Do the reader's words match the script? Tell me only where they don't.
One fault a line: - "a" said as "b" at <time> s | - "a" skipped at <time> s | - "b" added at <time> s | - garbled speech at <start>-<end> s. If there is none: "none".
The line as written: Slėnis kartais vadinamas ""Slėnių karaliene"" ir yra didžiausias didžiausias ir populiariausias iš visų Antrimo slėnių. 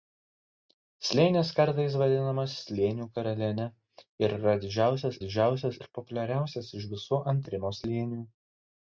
none